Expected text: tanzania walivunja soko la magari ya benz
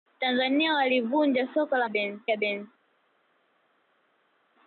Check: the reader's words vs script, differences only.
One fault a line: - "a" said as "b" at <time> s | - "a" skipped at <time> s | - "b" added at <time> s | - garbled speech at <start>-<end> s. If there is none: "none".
- "magari" said as "benz" at 1.9 s